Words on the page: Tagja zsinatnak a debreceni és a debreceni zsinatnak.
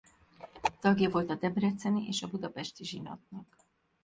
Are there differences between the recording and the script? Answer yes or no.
yes